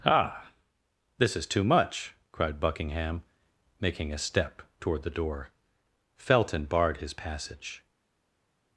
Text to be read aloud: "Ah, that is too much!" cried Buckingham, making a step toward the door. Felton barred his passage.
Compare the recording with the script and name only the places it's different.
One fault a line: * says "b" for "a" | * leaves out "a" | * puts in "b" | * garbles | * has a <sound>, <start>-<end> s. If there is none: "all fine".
* says "this" for "that"